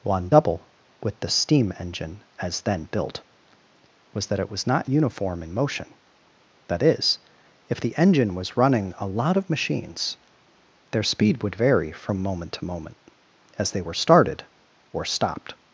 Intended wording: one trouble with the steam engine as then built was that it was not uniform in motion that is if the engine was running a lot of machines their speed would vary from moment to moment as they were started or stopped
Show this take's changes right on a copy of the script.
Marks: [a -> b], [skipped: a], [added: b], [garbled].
one [trouble -> double] with the steam engine as then built was that it was not uniform in motion that is if the engine was running a lot of machines their speed would vary from moment to moment as they were started or stopped